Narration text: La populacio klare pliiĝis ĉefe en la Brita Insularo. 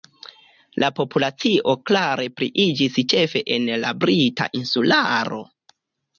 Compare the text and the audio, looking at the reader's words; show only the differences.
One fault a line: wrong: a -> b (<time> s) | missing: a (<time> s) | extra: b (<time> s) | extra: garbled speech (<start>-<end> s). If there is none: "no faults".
no faults